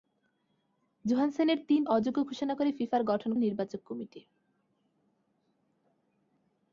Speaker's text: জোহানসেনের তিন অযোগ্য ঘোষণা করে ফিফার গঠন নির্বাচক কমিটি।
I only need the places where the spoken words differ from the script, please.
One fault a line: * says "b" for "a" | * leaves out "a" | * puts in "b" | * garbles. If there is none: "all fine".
all fine